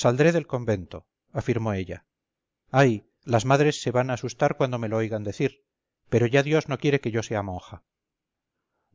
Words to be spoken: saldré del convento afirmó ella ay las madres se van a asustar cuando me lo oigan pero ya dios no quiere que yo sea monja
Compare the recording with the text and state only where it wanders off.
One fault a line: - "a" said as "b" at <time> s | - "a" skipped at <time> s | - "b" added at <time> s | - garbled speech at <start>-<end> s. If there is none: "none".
- "decir" added at 5.2 s